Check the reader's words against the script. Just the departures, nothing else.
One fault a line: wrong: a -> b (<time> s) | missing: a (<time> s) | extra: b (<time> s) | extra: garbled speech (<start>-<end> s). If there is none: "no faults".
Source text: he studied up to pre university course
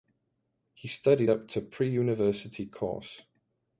no faults